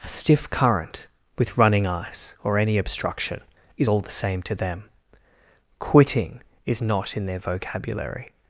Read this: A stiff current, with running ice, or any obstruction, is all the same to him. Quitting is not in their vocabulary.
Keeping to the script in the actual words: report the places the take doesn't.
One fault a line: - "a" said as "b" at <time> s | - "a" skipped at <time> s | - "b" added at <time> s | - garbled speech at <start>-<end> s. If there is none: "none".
- "him" said as "them" at 4.5 s